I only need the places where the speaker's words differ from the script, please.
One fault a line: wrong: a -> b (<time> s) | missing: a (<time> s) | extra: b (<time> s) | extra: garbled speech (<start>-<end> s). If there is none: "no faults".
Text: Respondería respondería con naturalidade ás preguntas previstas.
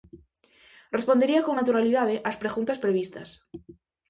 missing: respondería (1.4 s)